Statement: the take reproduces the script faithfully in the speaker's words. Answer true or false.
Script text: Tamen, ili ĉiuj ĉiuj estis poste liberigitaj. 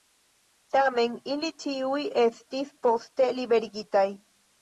false